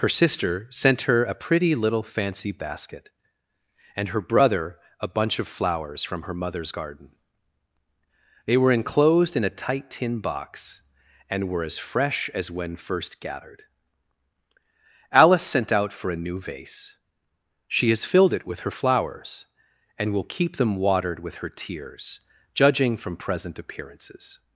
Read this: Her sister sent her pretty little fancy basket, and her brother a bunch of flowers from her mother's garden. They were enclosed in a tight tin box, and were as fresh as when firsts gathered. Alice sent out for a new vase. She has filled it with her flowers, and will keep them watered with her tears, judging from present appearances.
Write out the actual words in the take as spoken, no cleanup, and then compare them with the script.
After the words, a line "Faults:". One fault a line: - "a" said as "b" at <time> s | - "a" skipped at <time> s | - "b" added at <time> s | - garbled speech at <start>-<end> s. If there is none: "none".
Her sister sent her a pretty little fancy basket, and her brother a bunch of flowers from her mother's garden. They were enclosed in a tight tin box, and were as fresh as when first gathered. Alice sent out for a new vase. She has filled it with her flowers, and will keep them watered with her tears, judging from present appearances.
Faults:
- "a" added at 1.2 s
- "firsts" said as "first" at 12.8 s